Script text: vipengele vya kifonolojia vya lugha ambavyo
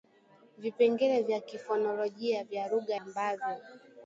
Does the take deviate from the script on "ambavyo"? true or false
false